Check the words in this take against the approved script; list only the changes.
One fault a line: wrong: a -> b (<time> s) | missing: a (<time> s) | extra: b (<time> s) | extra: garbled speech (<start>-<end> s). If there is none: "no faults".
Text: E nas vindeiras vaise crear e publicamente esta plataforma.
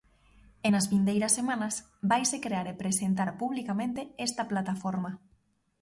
extra: semanas (1.4 s)
extra: presentar (2.8 s)